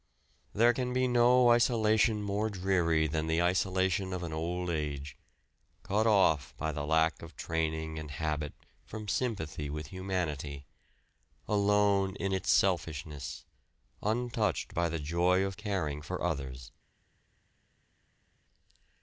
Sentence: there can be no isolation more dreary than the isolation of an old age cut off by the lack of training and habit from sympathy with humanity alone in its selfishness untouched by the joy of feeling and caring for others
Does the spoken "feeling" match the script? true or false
false